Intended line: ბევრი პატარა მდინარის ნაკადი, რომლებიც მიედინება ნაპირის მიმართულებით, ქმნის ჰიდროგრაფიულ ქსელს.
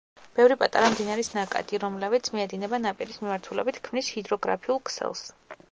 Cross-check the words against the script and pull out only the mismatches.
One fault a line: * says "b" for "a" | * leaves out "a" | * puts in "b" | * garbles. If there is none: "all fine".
all fine